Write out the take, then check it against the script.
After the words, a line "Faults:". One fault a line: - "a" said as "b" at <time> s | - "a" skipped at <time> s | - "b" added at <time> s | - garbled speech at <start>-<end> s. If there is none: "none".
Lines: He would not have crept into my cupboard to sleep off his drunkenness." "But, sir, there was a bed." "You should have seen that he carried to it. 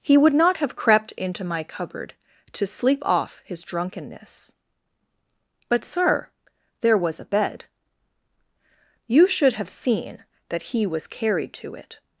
He would not have crept into my cupboard to sleep off his drunkenness." "But, sir, there was a bed." "You should have seen that he was carried to it.
Faults:
- "was" added at 10.8 s